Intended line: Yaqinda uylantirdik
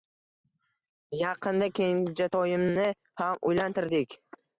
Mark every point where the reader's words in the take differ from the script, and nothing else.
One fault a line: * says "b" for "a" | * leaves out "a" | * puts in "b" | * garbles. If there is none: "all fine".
* puts in "kenjatoyimni ham"